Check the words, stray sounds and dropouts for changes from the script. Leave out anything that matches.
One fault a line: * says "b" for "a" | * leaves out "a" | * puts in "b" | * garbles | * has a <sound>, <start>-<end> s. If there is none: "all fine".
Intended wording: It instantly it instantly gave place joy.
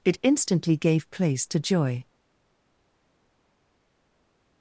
* leaves out "it instantly"
* puts in "to"